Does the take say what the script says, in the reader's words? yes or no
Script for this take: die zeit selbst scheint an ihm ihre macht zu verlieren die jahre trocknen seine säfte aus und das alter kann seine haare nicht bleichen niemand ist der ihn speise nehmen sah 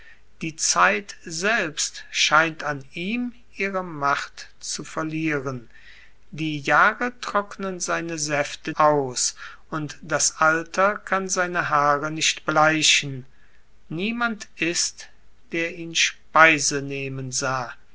yes